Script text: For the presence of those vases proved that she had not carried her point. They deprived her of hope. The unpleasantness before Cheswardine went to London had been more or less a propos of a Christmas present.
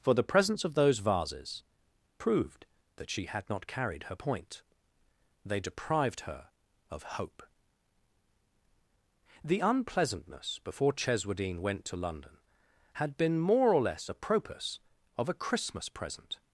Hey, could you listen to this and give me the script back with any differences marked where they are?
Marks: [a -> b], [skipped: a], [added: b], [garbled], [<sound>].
For the presence of those vases proved that she had not carried her point. They deprived her of hope. The unpleasantness before Cheswardine went to London had been more or less a propos of a Christmas present.